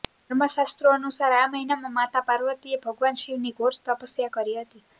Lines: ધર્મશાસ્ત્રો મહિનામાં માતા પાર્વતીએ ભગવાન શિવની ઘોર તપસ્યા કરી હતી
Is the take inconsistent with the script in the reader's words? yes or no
yes